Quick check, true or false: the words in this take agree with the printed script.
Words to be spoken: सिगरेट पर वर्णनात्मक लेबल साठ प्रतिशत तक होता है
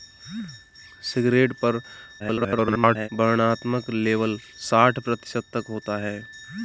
false